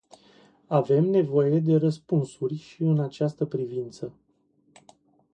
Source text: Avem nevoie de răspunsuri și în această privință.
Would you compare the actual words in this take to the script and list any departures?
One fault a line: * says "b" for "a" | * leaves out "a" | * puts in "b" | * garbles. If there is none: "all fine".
all fine